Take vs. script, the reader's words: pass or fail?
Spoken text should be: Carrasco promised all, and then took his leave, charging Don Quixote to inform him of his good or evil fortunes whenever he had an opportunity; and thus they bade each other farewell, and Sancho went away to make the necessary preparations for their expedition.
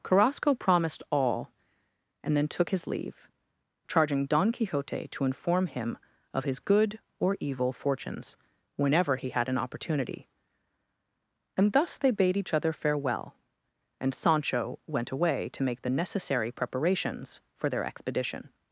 pass